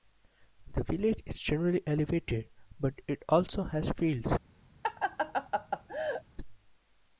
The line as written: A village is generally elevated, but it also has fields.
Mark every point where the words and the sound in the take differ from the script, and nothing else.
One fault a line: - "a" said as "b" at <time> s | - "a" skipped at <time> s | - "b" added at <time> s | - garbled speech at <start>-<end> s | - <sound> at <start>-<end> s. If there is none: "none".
- "A" said as "The" at 0.7 s
- laugh at 4.8-6.2 s